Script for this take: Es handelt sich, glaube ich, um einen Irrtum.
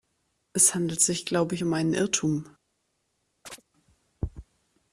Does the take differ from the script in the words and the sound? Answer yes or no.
yes